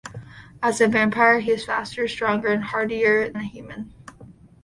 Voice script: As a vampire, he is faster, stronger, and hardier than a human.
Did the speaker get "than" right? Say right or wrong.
wrong